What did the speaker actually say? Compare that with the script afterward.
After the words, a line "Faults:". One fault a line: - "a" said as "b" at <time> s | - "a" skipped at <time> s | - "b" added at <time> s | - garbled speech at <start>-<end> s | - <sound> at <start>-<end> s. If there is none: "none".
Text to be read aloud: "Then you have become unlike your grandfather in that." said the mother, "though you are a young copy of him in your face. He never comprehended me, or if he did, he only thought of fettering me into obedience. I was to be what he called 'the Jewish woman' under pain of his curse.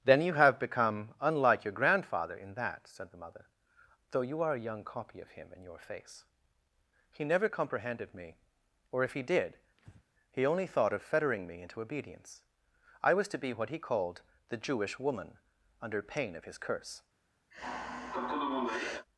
"Then you have become unlike your grandfather in that." said the mother, "though you are a young copy of him in your face. He never comprehended me, or if he did, he only thought of fettering me into obedience. I was to be what he called 'the Jewish woman' under pain of his curse.
Faults:
- breath at 9.8-10.0 s
- sigh at 17.5-19.1 s